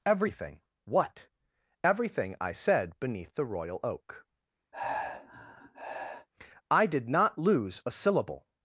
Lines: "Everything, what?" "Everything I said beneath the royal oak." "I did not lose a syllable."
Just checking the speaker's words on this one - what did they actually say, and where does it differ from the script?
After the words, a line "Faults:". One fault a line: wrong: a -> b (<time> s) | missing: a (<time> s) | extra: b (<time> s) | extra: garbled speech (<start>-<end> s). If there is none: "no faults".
"Everything, what?" "Everything I said beneath the royal oak." "I did not lose a syllable."
Faults:
no faults